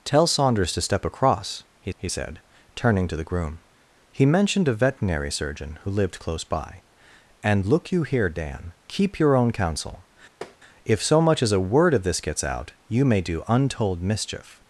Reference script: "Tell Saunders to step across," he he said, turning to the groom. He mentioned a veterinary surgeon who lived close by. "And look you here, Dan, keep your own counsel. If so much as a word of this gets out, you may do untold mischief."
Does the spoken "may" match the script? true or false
true